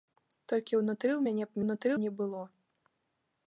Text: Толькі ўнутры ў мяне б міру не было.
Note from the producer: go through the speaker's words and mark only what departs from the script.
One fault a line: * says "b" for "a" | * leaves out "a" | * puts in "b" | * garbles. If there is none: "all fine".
* says "ўнутры" for "міру"